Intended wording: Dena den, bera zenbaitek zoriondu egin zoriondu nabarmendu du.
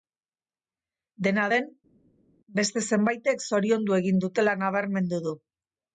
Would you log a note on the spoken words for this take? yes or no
yes